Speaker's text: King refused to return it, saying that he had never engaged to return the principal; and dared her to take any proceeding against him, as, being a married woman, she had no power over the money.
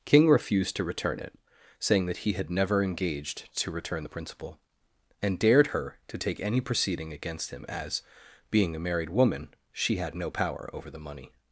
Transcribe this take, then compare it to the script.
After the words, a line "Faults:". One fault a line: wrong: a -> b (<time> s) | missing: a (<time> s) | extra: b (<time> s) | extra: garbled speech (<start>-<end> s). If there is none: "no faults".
King refused to return it, saying that he had never engaged to return the principal; and dared her to take any proceeding against him, as, being a married woman, she had no power over the money.
Faults:
no faults